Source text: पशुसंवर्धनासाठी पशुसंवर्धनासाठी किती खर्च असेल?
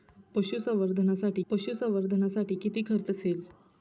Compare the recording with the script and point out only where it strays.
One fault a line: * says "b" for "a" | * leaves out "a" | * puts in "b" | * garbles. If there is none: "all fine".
all fine